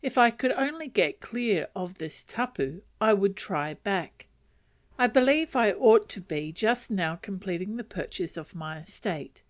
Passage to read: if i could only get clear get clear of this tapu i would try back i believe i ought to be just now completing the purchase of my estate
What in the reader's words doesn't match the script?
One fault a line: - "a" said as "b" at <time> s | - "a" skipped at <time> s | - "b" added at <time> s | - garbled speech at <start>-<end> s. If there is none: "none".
- "get clear" skipped at 1.7 s